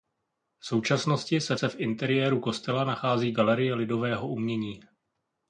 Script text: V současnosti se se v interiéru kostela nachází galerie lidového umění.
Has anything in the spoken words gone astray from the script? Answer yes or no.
no